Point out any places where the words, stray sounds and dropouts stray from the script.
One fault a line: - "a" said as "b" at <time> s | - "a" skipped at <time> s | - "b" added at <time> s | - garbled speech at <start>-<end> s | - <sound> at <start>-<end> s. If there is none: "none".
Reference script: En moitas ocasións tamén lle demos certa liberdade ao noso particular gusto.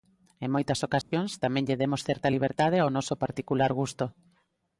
- dropout at 1.0-1.1 s